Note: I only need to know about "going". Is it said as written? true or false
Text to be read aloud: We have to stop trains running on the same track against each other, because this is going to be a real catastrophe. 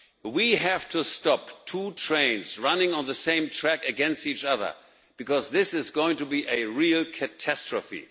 true